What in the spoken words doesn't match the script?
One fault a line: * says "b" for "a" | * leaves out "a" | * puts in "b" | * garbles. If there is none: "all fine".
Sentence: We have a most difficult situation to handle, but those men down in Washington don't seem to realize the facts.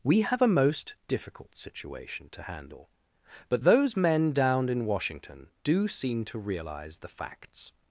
* says "do" for "don't"